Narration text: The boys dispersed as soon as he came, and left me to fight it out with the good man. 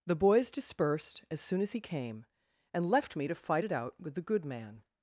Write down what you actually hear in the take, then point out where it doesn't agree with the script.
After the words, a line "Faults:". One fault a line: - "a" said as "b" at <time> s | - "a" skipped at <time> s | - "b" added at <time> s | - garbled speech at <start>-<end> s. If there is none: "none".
The boys dispersed as soon as he came, and left me to fight it out with the good man.
Faults:
none